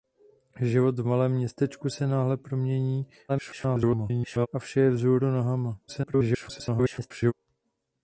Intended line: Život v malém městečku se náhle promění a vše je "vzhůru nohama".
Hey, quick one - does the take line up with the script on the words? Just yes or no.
no